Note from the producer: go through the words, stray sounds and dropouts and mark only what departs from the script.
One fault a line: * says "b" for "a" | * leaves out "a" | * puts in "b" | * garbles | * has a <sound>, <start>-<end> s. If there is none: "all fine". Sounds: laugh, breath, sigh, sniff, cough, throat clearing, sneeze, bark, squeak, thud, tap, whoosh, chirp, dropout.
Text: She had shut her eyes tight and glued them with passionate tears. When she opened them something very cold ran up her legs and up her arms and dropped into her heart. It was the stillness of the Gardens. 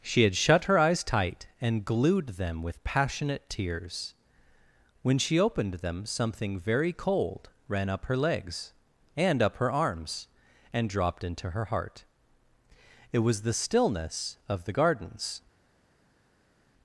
all fine